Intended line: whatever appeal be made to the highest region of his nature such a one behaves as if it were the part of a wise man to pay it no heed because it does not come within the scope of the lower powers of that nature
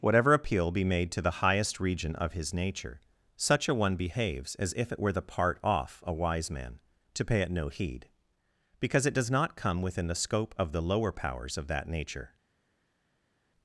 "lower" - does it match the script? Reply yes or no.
yes